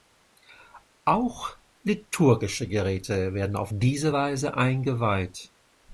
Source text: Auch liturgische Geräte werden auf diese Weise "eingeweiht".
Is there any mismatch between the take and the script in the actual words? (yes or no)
no